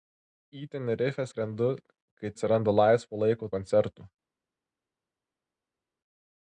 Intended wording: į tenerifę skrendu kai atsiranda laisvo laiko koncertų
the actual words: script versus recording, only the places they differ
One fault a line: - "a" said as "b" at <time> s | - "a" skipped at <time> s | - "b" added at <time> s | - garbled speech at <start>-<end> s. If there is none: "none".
none